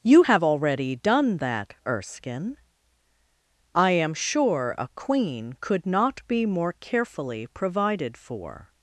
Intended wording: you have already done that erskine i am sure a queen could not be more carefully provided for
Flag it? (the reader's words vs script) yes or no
no